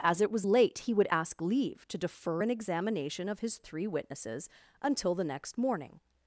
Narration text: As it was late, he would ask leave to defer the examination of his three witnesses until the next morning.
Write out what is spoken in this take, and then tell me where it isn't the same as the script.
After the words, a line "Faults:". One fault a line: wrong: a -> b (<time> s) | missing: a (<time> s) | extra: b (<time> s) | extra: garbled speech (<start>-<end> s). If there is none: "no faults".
As it was late, he would ask leave to defer an examination of his three witnesses until the next morning.
Faults:
wrong: the -> an (2.4 s)